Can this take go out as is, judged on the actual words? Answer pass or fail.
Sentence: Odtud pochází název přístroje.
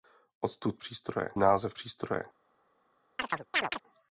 fail